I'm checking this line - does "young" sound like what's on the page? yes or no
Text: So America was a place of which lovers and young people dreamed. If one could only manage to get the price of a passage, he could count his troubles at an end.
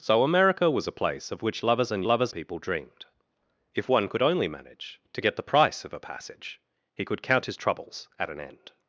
no